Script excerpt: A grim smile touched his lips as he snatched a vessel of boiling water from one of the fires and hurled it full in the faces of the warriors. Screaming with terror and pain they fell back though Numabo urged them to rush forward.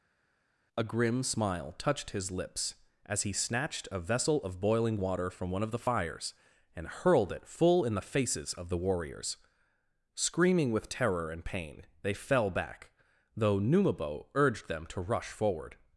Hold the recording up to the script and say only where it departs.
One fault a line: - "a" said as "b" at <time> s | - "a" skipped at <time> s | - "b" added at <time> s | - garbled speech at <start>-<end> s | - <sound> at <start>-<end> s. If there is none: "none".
none